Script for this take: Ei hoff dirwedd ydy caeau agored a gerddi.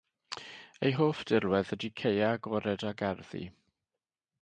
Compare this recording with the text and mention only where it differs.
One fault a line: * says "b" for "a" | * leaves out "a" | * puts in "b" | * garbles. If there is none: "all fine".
all fine